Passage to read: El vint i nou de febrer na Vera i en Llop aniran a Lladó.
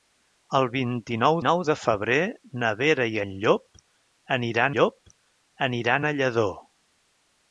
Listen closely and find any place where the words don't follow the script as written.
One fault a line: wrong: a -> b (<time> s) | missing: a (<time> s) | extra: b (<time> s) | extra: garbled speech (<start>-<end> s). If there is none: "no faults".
extra: nou (1.5 s)
extra: Llop aniran (4.8 s)